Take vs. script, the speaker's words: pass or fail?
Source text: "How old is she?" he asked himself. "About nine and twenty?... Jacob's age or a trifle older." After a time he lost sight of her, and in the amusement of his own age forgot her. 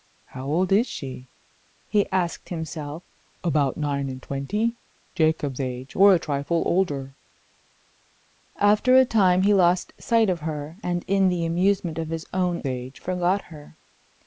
pass